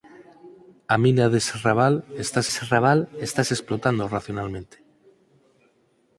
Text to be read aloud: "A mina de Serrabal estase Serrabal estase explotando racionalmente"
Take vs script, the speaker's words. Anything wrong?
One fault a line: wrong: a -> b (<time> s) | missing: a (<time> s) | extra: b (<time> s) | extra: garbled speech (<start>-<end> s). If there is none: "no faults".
no faults